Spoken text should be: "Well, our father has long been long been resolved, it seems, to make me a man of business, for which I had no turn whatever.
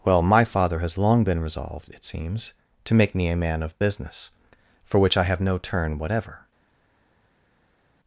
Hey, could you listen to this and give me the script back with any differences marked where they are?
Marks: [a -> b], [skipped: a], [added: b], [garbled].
"Well, [our -> my] father has long been [skipped: long been] resolved, it seems, to make me a man of business, for which I [had -> have] no turn whatever.